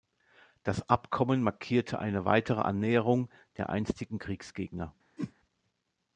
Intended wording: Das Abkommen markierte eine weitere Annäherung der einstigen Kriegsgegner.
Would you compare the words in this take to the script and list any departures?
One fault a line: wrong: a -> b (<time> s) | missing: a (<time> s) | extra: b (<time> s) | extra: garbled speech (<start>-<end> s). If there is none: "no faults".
no faults